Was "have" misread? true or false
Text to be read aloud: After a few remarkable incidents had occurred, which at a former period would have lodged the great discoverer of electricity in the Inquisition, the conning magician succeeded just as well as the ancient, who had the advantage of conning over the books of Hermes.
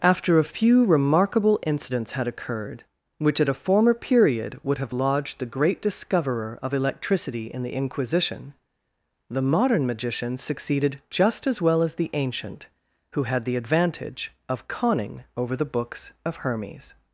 false